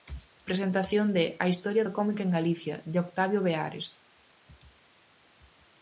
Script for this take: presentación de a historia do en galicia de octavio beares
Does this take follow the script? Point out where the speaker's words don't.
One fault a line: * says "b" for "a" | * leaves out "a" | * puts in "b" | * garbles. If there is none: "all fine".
* puts in "cómic"